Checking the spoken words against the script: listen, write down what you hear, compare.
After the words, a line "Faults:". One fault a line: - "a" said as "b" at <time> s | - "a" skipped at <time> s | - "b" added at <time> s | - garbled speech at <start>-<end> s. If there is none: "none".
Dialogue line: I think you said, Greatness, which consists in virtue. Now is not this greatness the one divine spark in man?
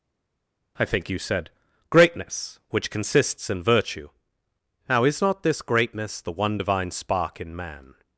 I think you said, Greatness, which consists in virtue. Now is not this greatness the one divine spark in man?
Faults:
none